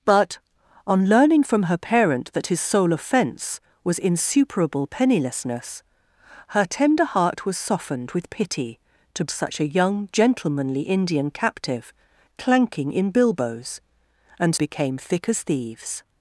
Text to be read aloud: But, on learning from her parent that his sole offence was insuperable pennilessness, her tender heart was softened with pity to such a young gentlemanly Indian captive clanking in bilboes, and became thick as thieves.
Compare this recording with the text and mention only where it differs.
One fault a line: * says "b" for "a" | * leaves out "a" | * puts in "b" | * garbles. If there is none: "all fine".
all fine